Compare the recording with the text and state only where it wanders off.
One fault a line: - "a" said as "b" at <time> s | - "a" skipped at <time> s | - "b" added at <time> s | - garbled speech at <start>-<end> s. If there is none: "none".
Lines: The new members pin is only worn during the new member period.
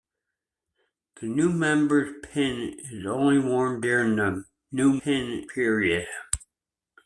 - "member" said as "pin" at 5.0 s